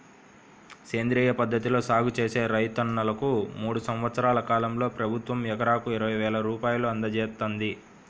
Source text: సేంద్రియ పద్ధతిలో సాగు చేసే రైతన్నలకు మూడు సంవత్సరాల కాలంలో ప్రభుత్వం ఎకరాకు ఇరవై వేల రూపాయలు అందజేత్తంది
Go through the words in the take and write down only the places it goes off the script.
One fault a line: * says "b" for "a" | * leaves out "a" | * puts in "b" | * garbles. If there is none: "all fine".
all fine